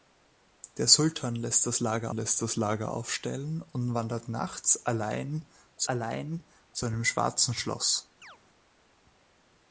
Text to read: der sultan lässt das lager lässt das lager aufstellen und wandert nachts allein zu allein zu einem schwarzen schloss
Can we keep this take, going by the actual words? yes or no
yes